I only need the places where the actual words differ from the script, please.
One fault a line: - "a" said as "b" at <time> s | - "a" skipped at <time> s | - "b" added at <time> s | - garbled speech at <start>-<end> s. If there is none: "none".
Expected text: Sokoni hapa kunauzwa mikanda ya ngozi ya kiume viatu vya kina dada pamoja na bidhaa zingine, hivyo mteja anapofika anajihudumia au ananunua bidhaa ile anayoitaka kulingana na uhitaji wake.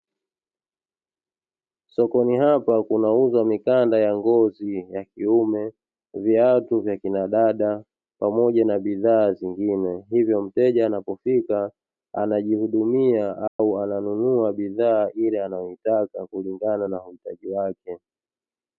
none